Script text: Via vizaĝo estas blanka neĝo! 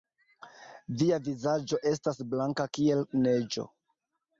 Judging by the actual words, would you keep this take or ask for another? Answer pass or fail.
fail